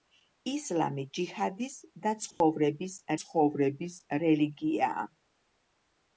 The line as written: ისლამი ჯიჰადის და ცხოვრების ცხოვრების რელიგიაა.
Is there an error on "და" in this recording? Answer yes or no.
no